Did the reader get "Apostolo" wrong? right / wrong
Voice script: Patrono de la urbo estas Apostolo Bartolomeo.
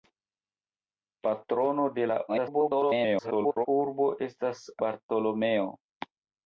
wrong